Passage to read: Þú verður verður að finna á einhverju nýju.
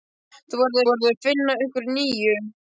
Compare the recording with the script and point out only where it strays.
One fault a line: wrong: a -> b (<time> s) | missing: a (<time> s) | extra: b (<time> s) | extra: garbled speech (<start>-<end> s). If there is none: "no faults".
no faults